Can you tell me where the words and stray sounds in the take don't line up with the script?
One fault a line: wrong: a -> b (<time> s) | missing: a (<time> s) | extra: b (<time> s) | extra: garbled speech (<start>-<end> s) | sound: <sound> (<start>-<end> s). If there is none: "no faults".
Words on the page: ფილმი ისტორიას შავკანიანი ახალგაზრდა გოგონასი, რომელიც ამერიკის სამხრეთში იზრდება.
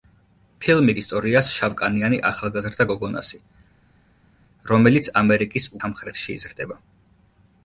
no faults